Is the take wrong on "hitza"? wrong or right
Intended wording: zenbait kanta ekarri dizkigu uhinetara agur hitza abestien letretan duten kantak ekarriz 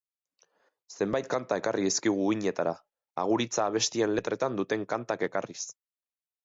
right